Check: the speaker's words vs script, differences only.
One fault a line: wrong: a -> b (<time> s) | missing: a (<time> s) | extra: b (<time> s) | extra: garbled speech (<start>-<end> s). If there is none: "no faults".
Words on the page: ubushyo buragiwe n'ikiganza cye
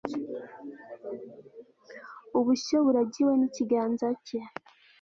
no faults